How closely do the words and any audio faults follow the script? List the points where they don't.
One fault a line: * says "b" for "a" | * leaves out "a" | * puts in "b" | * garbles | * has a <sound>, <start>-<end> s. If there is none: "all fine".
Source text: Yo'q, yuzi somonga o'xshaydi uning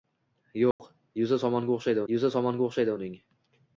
* has a dropout, 0.7-0.8 s
* puts in "yuzi somonga o'xshaydi"